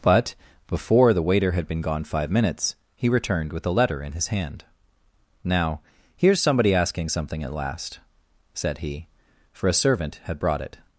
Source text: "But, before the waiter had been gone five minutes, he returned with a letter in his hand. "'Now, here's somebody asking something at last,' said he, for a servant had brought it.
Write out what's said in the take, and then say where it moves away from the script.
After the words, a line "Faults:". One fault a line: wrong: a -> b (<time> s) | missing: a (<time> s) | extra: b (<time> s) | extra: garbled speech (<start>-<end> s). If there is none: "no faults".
"But, before the waiter had been gone five minutes, he returned with a letter in his hand. "'Now, here's somebody asking something at last,' said he, for a servant had brought it.
Faults:
no faults